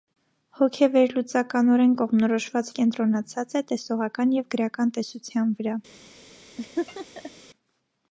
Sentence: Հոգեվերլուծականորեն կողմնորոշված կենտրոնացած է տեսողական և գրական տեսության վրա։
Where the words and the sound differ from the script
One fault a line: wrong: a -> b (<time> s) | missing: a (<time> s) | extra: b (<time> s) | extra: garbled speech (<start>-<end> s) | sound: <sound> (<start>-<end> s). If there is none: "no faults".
sound: laugh (6.6-7.3 s)